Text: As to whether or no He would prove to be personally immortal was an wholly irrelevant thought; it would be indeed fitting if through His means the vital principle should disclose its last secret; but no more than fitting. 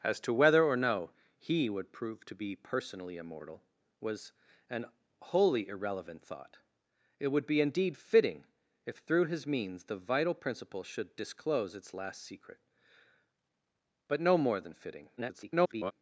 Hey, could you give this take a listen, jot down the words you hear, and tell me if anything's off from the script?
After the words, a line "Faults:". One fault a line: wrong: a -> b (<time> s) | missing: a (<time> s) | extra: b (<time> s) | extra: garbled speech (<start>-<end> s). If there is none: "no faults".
As to whether or no He would prove to be personally immortal was an wholly irrelevant thought; it would be indeed fitting if through His means the vital principle should disclose its last secret; but no more than fitting. [garbled]
Faults:
extra: garbled speech (15.2-15.9 s)